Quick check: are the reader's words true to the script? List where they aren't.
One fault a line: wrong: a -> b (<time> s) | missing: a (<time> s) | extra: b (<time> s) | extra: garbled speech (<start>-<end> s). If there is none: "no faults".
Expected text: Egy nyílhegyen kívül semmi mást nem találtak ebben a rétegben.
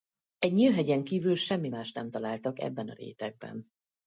no faults